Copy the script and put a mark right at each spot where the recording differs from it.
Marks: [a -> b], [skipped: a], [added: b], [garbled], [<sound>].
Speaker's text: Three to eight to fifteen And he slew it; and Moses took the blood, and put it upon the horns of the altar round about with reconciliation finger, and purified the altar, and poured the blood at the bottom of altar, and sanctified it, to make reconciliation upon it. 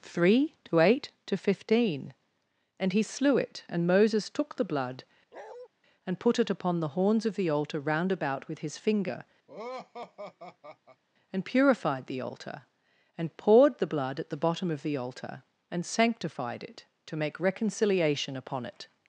Three to eight to fifteen And he slew it; and Moses took the blood, [bark] and put it upon the horns of the altar round about with [reconciliation -> his] finger, [laugh] and purified the altar, and poured the blood at the bottom of [added: the] altar, and sanctified it, to make reconciliation upon it.